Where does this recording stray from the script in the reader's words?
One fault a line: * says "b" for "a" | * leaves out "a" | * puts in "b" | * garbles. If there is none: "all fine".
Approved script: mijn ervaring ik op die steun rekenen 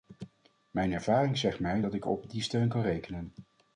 * puts in "zegt mij dat"
* puts in "kan"